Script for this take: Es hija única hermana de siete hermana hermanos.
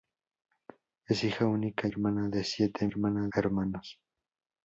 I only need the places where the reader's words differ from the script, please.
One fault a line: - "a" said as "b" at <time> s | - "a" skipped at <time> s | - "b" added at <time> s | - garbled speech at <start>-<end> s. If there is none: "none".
none